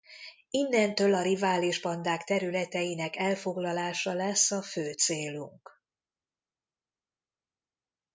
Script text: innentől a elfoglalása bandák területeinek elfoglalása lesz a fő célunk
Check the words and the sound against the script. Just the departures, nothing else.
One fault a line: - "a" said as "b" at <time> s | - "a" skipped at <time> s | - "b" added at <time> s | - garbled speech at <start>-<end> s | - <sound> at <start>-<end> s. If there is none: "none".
- "elfoglalása" said as "rivális" at 1.2 s